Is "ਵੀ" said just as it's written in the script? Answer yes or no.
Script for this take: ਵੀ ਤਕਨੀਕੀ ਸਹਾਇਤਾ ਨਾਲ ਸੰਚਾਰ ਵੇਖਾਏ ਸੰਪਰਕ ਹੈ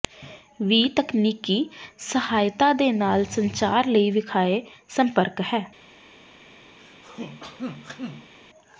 yes